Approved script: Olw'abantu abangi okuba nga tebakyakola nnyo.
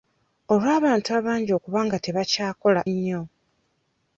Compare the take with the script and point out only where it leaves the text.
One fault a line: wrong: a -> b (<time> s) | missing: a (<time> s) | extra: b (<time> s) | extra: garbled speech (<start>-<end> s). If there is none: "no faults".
no faults